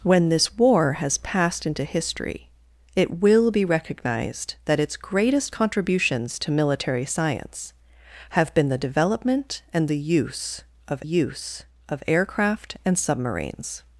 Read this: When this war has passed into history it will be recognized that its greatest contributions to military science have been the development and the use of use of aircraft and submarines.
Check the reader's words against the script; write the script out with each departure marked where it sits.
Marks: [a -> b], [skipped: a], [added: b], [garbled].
When this war has passed into history it will be recognized that its greatest contributions to military science have been the development and the use of use of aircraft and submarines.